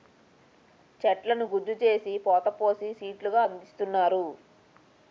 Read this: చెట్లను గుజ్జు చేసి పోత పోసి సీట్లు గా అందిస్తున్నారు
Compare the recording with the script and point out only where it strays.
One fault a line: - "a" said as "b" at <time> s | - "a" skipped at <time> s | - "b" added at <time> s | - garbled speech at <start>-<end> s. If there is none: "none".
none